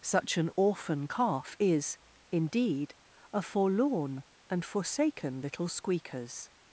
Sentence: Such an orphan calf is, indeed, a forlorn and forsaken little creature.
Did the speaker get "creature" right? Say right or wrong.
wrong